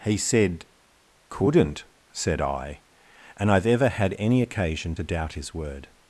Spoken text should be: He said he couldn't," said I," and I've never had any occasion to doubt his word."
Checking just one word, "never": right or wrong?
wrong